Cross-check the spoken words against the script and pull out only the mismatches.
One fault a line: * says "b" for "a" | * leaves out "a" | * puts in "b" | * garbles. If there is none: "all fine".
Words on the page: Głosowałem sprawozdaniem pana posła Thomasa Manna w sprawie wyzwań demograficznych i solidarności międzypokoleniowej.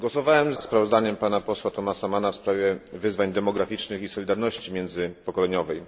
all fine